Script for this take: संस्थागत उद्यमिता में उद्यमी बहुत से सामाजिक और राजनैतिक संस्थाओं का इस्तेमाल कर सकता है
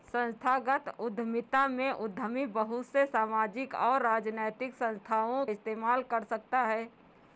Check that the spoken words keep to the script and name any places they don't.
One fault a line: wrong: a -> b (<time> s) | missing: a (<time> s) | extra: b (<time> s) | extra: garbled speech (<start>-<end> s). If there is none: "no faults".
missing: का (5.5 s)